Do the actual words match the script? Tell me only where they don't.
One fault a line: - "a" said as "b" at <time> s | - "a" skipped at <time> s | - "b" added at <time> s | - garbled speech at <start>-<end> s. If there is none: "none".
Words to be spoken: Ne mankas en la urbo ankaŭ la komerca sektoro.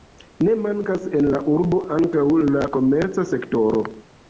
none